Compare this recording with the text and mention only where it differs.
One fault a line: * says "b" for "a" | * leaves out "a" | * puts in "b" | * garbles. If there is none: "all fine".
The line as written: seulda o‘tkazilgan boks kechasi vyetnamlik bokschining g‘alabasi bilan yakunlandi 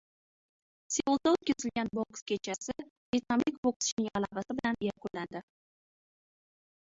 all fine